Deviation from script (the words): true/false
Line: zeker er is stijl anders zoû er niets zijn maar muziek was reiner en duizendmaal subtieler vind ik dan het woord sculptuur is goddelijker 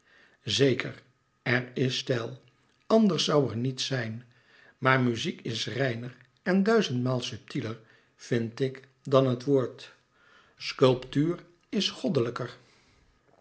true